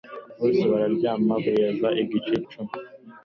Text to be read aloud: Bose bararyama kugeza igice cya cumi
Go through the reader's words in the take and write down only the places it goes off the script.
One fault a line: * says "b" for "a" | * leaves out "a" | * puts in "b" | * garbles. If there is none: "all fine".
* leaves out "cya"